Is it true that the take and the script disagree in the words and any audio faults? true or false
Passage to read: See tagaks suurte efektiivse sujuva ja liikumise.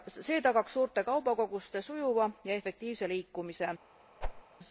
true